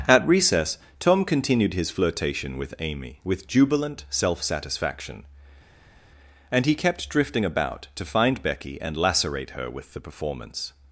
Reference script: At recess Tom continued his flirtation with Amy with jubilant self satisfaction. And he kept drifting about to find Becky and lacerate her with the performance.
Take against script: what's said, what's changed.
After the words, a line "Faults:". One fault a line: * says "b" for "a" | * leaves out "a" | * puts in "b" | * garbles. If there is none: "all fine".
At recess Tom continued his flirtation with Amy with jubilant self satisfaction. And he kept drifting about to find Becky and lacerate her with the performance.
Faults:
all fine